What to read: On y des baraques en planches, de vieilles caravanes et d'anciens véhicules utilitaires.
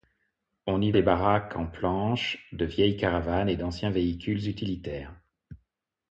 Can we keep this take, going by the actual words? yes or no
yes